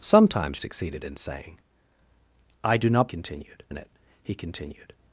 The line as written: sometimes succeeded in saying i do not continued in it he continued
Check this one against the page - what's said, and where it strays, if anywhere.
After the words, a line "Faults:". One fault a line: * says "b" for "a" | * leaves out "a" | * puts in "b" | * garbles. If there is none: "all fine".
sometimes succeeded in saying i do not continued in it he continued
Faults:
all fine